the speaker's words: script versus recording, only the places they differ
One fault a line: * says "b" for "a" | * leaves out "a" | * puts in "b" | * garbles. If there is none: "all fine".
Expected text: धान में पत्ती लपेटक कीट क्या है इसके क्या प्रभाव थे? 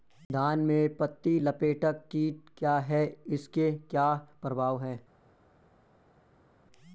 * says "हैं" for "थे"